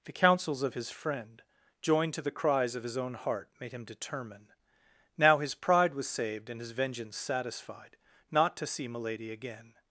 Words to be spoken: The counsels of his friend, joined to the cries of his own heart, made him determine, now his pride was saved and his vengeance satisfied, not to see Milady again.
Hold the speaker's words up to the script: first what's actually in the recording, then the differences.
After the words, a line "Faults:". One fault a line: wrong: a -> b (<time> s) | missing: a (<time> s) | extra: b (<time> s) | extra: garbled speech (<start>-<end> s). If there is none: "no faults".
The counsels of his friend, joined to the cries of his own heart, made him determine, now his pride was saved and his vengeance satisfied, not to see Milady again.
Faults:
no faults